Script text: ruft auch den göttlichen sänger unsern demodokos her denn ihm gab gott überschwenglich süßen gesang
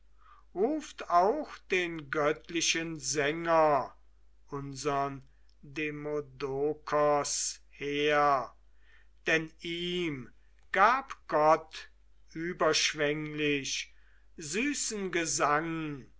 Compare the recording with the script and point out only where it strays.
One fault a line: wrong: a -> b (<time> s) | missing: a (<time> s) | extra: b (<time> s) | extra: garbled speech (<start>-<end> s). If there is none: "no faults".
no faults